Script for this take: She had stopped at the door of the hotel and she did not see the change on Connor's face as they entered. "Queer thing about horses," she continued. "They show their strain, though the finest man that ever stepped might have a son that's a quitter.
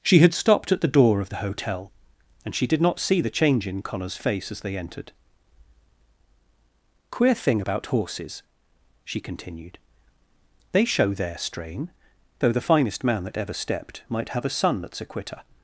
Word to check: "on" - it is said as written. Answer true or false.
false